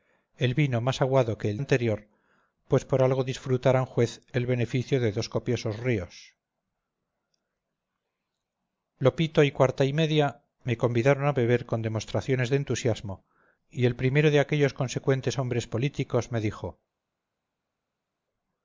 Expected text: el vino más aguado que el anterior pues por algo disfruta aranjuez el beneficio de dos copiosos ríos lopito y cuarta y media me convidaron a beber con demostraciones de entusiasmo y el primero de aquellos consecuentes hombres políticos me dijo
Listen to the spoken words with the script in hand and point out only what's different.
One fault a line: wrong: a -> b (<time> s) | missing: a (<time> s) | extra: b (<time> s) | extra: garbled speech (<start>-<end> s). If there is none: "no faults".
no faults